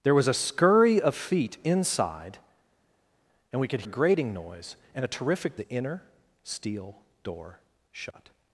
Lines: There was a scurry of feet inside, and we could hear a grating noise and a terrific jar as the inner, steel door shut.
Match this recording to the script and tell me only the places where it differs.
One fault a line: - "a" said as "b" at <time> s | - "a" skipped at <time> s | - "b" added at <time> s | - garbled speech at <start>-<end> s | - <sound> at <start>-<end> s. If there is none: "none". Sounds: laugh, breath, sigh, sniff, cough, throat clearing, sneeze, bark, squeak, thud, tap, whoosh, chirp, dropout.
- "hear" skipped at 3.8 s
- "jar as" skipped at 5.6 s